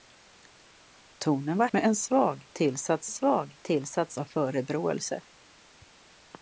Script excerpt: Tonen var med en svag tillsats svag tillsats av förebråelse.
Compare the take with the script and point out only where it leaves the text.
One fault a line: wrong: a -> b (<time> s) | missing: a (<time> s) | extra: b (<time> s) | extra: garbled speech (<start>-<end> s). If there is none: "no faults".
no faults